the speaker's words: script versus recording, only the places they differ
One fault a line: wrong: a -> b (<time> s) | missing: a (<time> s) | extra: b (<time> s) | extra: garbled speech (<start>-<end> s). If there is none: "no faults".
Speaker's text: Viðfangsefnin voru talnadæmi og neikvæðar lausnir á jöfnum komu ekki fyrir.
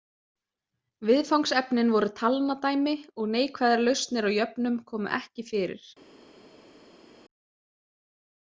no faults